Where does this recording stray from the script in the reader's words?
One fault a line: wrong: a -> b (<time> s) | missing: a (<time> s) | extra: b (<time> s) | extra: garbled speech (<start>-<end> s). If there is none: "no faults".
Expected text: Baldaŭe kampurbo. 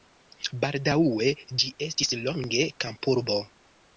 extra: ĝi estis longe (1.6 s)